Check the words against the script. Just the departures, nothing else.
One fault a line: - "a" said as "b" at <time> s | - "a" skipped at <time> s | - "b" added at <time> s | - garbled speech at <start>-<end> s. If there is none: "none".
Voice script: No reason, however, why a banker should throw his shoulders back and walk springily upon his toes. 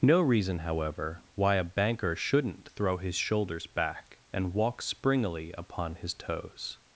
- "should" said as "shouldn't" at 2.1 s